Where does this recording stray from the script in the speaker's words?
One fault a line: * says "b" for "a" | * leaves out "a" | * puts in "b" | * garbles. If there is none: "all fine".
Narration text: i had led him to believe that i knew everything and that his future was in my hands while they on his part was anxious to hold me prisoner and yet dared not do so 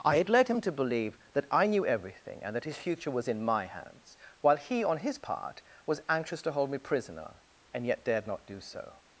* says "he" for "they"